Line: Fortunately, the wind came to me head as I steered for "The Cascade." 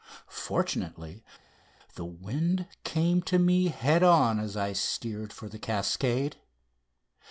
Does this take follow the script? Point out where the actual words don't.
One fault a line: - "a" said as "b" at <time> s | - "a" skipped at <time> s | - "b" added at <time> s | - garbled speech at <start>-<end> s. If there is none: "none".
- "on" added at 4.0 s